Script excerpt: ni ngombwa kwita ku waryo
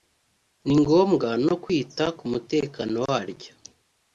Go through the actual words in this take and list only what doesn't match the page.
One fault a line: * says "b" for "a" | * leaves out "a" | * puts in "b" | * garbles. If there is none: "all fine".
* puts in "no"
* puts in "mutekano"